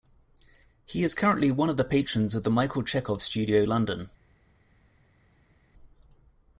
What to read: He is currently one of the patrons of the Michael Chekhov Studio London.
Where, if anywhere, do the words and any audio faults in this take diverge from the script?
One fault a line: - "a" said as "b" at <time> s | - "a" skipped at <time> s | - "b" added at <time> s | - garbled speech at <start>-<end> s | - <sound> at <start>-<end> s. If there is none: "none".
none